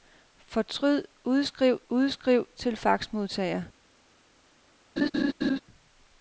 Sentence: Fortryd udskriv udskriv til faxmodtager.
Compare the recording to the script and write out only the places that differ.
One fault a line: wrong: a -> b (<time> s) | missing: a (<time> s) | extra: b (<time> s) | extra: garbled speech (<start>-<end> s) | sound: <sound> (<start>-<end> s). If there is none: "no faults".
sound: laugh (5.0-5.6 s)